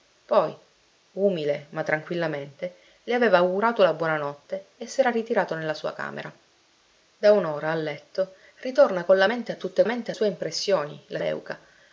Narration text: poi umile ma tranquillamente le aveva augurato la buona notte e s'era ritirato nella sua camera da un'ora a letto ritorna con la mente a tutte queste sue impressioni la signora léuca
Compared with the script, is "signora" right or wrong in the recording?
wrong